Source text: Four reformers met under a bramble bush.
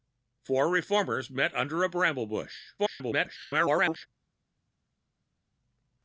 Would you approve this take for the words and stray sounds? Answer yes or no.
no